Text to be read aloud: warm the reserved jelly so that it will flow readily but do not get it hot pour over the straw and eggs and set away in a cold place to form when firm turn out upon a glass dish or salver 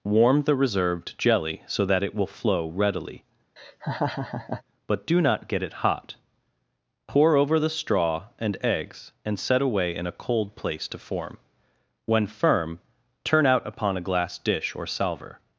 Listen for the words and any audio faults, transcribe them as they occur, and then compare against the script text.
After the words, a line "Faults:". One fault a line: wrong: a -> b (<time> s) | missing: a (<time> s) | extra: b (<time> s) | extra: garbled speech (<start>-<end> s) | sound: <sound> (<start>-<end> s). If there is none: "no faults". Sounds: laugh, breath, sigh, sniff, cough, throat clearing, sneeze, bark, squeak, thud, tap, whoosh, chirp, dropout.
warm the reserved jelly so that it will flow readily but do not get it hot pour over the straw and eggs and set away in a cold place to form when firm turn out upon a glass dish or salver
Faults:
sound: laugh (3.6-4.6 s)